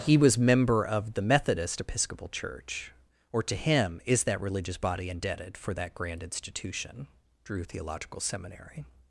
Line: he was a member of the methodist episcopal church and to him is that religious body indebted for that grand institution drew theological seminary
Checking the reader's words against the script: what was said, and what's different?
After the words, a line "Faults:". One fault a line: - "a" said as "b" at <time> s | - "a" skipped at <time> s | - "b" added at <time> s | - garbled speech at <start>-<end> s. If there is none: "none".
he was member of the methodist episcopal church or to him is that religious body indebted for that grand institution drew theological seminary
Faults:
- "a" skipped at 0.3 s
- "and" said as "or" at 3.3 s